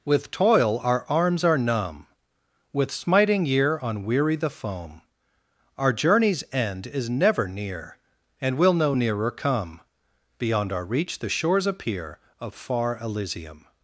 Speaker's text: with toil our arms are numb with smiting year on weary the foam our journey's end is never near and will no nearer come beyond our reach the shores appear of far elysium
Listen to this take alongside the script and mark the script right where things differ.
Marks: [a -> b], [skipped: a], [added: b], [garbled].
with toil our arms are numb with smiting year on weary the foam our journey's end is never near and will no nearer come beyond our reach the shores appear of far elysium